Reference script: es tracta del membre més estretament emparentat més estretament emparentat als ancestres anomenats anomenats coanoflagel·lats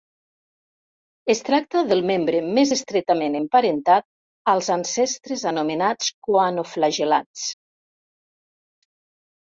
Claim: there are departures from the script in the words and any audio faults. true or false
true